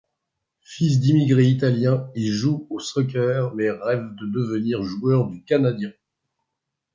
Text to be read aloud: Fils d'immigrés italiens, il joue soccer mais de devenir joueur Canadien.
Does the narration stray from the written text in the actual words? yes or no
yes